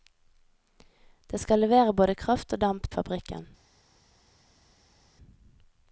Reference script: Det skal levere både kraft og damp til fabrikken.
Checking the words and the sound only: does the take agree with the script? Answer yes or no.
no